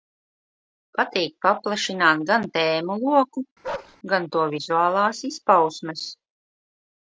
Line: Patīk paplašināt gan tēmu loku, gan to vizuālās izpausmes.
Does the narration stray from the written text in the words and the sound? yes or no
yes